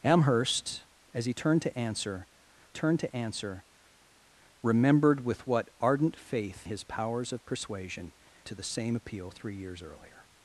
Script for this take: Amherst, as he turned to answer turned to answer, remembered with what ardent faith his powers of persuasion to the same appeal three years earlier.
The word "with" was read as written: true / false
true